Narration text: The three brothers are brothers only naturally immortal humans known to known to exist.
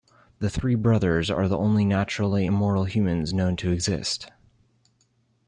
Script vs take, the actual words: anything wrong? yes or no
yes